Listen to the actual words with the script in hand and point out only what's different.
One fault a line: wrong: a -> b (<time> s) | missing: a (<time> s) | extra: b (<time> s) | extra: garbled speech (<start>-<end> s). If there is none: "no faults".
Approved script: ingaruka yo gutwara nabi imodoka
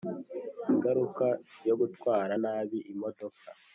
no faults